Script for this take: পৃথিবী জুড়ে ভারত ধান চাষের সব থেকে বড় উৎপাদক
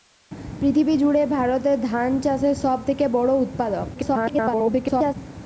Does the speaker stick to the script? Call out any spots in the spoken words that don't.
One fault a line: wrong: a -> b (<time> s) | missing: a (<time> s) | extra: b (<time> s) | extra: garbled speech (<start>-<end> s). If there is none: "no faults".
extra: garbled speech (3.9-5.2 s)